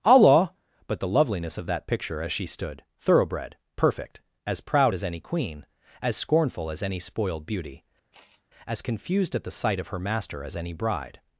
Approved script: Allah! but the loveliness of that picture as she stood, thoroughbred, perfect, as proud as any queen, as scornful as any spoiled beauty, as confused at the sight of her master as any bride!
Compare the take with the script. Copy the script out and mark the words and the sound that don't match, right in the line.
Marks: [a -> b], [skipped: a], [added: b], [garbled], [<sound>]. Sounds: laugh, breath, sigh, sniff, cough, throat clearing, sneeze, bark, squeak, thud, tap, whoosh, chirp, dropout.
Allah! but the loveliness of that picture as she stood, thoroughbred, perfect, as proud as any queen, as scornful as any spoiled beauty, [sigh] as confused at the sight of her master as any bride!